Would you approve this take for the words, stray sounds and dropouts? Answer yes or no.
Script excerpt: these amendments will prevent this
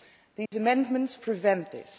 no